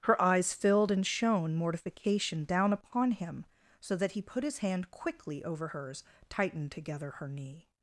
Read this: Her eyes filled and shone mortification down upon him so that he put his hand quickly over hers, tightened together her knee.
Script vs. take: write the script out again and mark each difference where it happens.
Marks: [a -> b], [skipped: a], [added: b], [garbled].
Her eyes filled and shone mortification down upon him so that he put his hand quickly over hers, tightened together her knee.